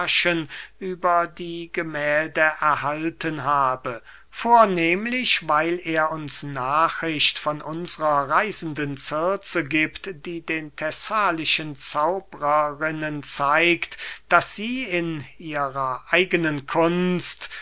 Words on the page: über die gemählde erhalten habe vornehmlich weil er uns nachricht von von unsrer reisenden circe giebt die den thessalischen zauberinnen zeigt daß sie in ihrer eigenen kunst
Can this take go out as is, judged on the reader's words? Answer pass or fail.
fail